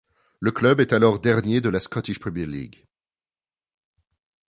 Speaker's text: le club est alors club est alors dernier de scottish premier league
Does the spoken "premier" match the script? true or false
true